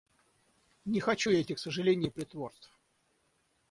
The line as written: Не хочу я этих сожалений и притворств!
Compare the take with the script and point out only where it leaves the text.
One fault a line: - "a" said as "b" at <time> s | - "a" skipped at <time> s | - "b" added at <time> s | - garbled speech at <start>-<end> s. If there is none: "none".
none